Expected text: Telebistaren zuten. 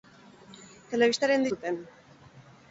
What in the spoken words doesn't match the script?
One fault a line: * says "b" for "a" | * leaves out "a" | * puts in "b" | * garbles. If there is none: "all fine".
all fine